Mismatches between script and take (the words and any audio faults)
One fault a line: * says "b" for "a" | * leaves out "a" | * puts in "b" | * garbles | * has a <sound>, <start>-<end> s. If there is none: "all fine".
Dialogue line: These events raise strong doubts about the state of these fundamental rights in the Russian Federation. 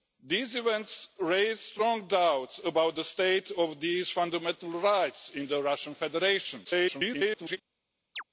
* garbles
* has a chirp, 8.1-8.2 s